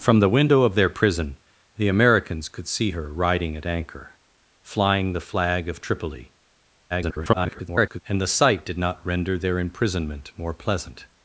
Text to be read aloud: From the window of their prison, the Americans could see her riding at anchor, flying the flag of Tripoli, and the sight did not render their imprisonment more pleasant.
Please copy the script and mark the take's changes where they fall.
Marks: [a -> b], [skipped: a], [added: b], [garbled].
From the window of their prison, the Americans could see her riding at anchor, flying the flag of Tripoli, [garbled] and the sight did not render their imprisonment more pleasant.